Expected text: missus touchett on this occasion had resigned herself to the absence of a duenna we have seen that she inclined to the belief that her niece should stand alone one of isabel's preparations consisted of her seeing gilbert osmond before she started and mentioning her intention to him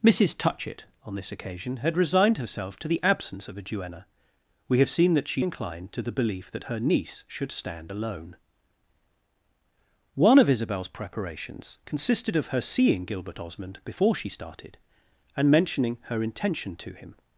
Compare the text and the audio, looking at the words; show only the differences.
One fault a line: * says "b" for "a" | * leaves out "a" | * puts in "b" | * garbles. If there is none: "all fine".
all fine